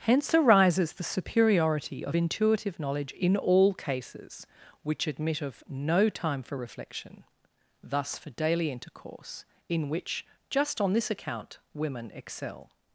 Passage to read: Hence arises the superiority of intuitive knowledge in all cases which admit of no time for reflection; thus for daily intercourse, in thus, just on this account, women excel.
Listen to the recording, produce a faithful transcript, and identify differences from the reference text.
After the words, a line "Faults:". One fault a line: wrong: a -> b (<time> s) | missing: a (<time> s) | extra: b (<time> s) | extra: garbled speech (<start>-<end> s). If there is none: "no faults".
Hence arises the superiority of intuitive knowledge in all cases which admit of no time for reflection; thus for daily intercourse, in which, just on this account, women excel.
Faults:
wrong: thus -> which (9.9 s)